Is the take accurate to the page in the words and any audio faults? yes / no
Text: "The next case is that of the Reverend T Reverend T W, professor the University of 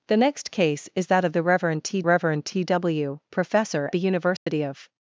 no